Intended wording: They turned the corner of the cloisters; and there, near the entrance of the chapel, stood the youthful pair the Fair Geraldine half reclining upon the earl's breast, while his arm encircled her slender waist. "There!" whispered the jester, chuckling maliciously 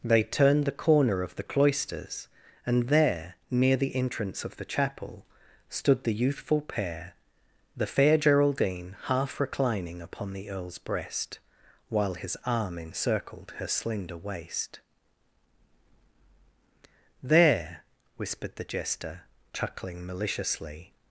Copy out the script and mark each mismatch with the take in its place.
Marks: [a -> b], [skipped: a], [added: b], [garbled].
They turned the corner of the cloisters; and there, near the entrance of the chapel, stood the youthful pair the Fair Geraldine half reclining upon the earl's breast, while his arm encircled her slender waist. "There!" whispered the jester, chuckling maliciously